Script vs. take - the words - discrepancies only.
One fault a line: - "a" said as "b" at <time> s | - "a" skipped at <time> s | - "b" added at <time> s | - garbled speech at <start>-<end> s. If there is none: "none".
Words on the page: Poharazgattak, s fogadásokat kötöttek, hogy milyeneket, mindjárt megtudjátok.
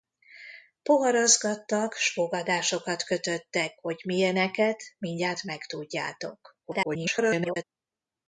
- garbled speech at 6.6-7.6 s